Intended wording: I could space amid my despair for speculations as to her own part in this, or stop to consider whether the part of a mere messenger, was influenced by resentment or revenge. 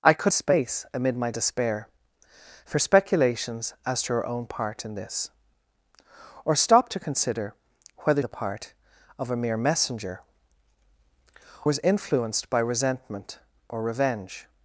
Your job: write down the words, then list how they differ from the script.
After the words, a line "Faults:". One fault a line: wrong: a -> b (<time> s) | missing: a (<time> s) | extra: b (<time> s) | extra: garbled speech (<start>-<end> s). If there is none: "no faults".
I could space amid my despair for speculations as to her own part in this, or stop to consider whether the part of a mere messenger, was influenced by resentment or revenge.
Faults:
no faults